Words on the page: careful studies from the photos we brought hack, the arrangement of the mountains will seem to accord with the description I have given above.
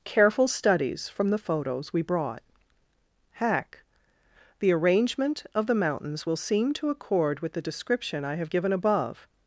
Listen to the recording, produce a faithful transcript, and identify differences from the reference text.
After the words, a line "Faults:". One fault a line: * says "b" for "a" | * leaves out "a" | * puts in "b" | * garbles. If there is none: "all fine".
careful studies from the photos we brought hack, the arrangement of the mountains will seem to accord with the description I have given above.
Faults:
all fine